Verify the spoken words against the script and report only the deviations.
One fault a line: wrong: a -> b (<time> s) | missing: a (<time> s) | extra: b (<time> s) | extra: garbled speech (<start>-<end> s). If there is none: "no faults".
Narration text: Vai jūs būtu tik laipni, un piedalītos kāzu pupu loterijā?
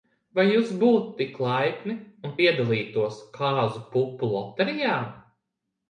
no faults